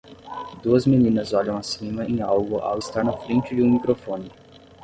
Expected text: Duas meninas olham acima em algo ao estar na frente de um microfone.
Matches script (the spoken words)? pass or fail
pass